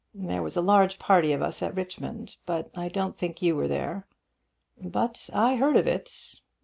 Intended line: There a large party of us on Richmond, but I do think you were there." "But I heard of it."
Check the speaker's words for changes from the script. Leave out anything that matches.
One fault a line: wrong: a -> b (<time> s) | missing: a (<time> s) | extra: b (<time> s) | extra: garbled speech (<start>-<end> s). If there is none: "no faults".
extra: was (0.4 s)
wrong: on -> at (1.6 s)
wrong: do -> don't (2.9 s)